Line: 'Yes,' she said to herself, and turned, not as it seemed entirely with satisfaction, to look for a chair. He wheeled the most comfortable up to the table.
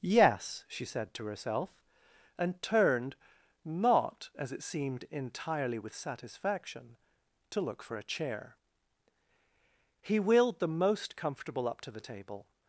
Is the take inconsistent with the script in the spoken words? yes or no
no